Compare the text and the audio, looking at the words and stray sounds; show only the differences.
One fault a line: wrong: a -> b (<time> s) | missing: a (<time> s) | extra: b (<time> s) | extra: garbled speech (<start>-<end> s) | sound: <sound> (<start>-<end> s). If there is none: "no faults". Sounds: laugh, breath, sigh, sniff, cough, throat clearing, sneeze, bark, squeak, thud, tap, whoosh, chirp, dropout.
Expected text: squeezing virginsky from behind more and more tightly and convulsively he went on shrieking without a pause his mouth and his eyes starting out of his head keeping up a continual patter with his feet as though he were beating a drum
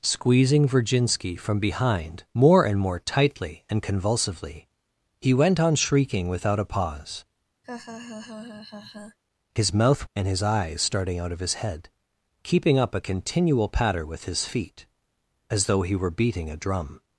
sound: laugh (7.6-9.2 s)